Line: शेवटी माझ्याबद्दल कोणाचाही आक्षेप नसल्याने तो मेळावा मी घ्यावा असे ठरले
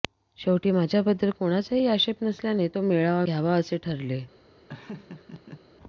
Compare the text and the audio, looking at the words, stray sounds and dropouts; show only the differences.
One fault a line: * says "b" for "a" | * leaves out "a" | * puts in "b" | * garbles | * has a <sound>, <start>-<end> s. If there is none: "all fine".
* leaves out "मी"
* has a laugh, 4.7-5.6 s